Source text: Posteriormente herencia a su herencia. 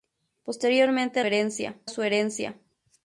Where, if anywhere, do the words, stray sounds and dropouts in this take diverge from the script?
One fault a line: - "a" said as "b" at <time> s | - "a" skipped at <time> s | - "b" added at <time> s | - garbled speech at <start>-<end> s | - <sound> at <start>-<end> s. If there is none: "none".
none